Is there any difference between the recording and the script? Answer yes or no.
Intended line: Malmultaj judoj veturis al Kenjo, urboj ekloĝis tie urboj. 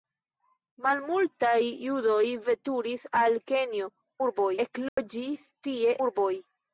no